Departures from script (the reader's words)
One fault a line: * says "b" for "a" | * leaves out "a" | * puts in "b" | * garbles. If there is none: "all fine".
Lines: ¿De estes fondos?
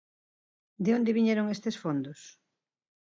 * puts in "onde viñeron"